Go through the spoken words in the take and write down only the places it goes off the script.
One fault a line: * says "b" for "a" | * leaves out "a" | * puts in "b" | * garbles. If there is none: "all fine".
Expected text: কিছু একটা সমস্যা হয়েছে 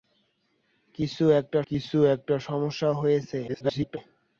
* puts in "কিছু একটা"
* garbles